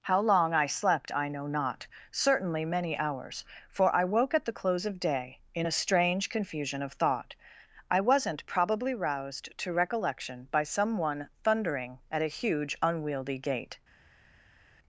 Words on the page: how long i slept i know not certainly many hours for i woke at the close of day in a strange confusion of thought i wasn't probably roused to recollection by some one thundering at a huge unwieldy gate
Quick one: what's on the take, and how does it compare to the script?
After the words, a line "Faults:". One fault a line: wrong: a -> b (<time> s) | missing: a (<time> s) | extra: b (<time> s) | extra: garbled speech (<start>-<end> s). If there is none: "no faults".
how long i slept i know not certainly many hours for i woke at the close of day in a strange confusion of thought i wasn't probably roused to recollection by some one thundering at a huge unwieldy gate
Faults:
no faults